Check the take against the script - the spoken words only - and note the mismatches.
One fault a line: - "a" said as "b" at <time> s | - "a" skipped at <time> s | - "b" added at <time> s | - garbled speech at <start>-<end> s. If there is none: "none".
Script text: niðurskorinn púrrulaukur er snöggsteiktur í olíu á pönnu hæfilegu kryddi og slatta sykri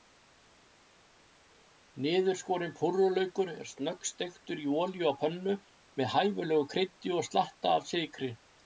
- "með" added at 6.0 s
- "af" added at 7.8 s